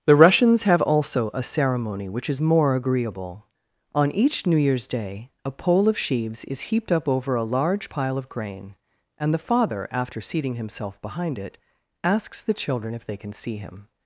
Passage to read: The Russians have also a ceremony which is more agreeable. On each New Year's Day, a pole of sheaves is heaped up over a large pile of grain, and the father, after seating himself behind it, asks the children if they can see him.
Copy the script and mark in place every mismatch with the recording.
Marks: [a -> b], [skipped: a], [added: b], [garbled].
The Russians have also a ceremony which is more agreeable. On each New Year's Day, a pole of sheaves is heaped up over a large pile of grain, and the father, after seating himself behind it, asks the children if they can see him.